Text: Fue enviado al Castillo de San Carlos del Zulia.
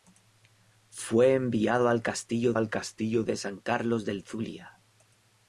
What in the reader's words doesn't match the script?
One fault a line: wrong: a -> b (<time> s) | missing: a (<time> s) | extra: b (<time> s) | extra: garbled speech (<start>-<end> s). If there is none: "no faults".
extra: al Castillo (2.5 s)